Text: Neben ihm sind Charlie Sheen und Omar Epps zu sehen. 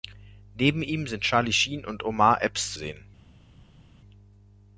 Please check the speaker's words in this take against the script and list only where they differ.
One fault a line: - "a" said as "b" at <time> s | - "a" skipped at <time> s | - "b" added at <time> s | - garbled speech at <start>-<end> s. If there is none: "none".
- "zu" skipped at 2.7 s